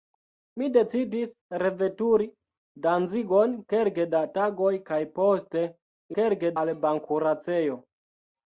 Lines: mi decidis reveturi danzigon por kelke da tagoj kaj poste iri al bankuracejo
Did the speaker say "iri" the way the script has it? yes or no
no